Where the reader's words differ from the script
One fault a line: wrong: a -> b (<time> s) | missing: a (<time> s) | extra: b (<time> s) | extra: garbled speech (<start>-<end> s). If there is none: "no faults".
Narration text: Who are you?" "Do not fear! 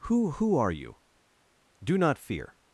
extra: who (0.3 s)